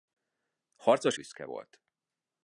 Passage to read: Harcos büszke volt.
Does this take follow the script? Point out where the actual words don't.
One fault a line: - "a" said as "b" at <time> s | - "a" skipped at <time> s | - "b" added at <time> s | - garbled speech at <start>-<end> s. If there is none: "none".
none